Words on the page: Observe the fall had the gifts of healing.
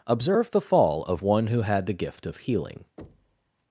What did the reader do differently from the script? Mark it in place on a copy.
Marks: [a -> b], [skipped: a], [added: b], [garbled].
Observe the fall [added: of one who] had the [gifts -> gift] of healing.